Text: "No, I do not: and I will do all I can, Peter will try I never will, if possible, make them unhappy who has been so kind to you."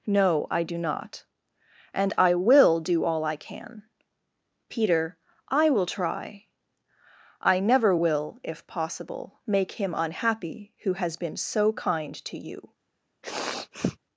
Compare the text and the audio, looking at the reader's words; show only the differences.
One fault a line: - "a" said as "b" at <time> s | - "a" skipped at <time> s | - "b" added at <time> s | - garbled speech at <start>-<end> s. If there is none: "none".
- "I" added at 5.5 s
- "them" said as "him" at 9.7 s